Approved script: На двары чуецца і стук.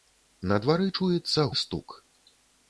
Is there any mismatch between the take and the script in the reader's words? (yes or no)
no